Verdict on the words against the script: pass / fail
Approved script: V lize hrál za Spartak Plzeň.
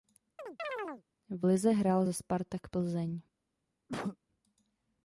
pass